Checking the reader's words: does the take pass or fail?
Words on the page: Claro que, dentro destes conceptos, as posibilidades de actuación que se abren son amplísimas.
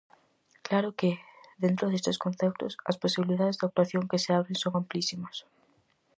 pass